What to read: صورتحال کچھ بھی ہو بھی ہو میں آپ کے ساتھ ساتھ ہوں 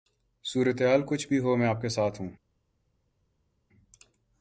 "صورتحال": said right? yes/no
yes